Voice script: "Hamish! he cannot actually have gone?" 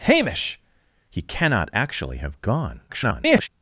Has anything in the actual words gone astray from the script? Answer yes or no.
yes